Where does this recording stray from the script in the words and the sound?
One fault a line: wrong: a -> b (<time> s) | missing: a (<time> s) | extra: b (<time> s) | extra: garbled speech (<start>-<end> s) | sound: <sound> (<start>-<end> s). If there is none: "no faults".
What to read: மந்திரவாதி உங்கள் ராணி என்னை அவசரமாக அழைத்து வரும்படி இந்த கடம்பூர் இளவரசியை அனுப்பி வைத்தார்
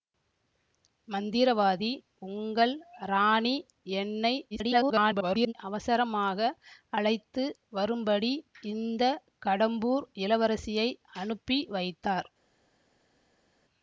extra: garbled speech (4.5-5.5 s)